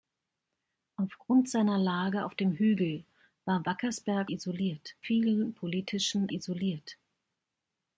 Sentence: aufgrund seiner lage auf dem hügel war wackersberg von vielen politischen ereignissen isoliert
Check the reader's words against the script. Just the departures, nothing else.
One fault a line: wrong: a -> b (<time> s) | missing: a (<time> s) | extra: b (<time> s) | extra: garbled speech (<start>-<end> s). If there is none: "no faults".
wrong: von -> isoliert (4.3 s)
missing: ereignissen (6.3 s)